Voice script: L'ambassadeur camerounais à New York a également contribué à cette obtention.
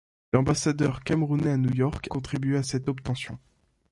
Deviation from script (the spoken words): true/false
true